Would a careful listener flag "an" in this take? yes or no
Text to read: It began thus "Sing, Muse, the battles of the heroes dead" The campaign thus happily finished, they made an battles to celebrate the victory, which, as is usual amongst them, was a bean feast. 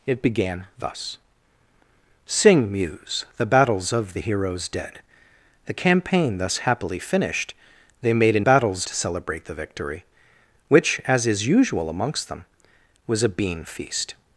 no